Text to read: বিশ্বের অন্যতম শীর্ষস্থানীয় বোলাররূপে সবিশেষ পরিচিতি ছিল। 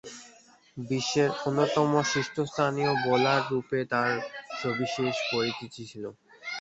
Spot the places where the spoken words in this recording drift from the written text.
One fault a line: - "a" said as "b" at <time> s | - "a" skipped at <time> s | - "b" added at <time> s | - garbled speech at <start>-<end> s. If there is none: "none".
- "তার" added at 3.9 s